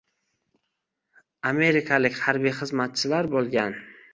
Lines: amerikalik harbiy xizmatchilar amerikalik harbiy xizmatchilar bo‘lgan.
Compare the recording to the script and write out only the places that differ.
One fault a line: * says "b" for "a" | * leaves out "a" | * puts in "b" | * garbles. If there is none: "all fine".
* leaves out "amerikalik harbiy xizmatchilar"